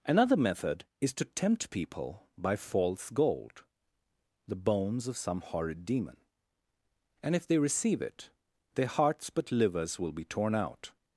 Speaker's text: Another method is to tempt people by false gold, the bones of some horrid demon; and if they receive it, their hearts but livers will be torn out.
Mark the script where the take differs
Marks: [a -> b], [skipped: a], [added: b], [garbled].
Another method is to tempt people by false gold, the bones of some horrid demon; and if they receive it, their hearts but livers will be torn out.